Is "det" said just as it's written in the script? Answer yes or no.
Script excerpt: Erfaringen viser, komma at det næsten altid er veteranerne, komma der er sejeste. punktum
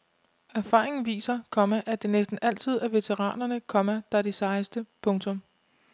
yes